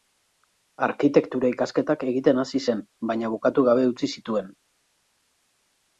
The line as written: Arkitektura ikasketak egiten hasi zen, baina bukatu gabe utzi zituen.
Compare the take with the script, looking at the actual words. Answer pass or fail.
pass